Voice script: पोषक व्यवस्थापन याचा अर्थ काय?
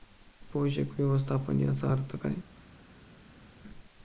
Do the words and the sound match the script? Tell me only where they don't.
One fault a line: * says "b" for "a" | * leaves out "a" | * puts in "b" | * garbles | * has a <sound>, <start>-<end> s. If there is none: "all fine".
all fine